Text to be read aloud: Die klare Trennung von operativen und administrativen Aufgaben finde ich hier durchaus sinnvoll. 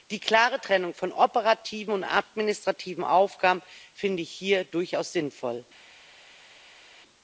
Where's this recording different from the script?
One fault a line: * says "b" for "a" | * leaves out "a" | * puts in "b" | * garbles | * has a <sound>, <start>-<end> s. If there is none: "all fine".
all fine